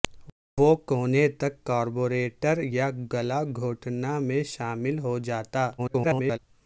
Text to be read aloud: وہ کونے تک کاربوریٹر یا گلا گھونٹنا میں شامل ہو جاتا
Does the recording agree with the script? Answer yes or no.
no